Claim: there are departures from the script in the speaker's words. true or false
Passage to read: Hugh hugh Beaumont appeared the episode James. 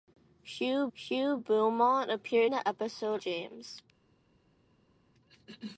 false